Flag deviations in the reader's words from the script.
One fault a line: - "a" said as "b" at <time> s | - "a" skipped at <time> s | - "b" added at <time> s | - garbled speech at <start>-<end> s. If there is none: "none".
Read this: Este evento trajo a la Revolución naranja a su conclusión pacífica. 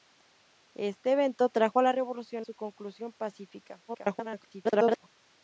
- "naranja a" skipped at 2.5 s
- garbled speech at 3.9-5.1 s